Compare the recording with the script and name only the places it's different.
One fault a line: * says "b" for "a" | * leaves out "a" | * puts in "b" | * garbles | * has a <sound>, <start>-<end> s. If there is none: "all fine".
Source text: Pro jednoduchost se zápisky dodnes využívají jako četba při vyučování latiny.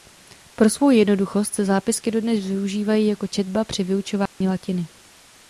* puts in "svou"
* has a dropout, 4.3-4.4 s